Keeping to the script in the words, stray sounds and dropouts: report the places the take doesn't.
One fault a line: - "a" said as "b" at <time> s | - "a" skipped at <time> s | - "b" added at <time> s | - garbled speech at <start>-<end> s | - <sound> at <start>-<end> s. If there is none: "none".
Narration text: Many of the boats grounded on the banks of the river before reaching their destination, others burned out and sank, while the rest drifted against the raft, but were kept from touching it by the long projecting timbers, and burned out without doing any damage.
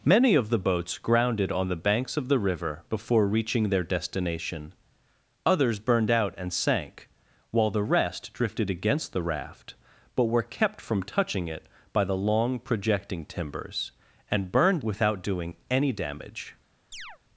- "out" skipped at 14.8 s
- chirp at 16.9-17.2 s